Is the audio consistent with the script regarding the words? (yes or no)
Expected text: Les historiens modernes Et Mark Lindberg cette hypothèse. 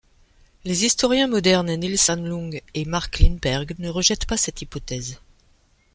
no